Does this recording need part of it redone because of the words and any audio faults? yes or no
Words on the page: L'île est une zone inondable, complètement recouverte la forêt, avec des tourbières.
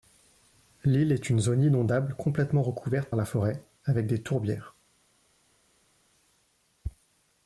no